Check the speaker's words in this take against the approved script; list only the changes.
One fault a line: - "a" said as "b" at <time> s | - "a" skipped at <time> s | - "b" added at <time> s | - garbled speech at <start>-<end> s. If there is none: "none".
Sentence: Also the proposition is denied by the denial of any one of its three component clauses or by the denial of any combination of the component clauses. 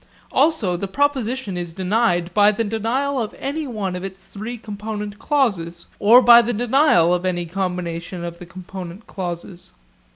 none